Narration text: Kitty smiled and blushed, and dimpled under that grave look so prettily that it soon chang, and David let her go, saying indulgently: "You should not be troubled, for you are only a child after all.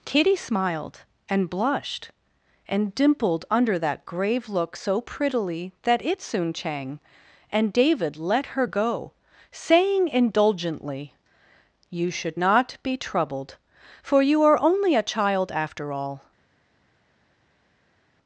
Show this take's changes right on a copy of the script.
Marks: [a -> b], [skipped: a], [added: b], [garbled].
Kitty smiled and blushed, and dimpled under that grave look so prettily that it soon chang, and David let her go, saying indulgently: "You should not be troubled, for you are only a child after all.